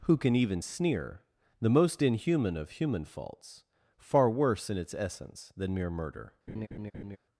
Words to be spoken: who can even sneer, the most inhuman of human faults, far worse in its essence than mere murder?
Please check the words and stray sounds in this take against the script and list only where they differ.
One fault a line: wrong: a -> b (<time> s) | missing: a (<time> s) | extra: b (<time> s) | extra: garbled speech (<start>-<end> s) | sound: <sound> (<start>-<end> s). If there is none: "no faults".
sound: laugh (6.5-7.2 s)